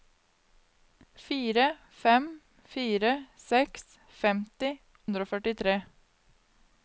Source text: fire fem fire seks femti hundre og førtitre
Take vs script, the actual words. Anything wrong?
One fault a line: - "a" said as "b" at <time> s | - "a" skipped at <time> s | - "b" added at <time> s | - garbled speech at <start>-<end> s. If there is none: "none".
none